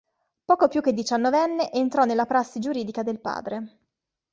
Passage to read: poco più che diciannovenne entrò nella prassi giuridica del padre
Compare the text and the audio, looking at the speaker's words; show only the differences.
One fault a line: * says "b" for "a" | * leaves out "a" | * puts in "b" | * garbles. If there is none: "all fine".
all fine